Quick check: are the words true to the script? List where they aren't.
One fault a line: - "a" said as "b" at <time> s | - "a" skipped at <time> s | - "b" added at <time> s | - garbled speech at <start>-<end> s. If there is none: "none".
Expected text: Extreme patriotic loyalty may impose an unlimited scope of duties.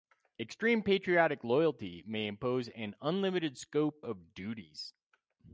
none